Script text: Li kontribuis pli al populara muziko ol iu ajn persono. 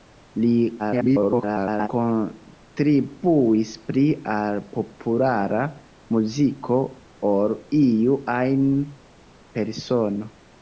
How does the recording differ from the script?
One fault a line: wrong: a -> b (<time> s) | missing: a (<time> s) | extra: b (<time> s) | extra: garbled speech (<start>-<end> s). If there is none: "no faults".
extra: garbled speech (0.8-1.9 s)